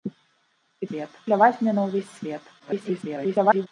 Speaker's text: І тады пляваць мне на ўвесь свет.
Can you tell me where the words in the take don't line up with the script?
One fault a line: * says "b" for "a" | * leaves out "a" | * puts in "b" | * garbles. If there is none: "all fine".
* says "свет" for "тады"
* garbles